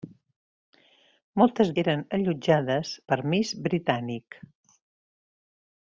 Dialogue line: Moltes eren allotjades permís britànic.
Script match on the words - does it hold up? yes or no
yes